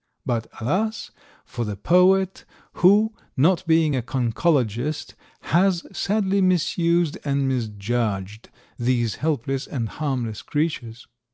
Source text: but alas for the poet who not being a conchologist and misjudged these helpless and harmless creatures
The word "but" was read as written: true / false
true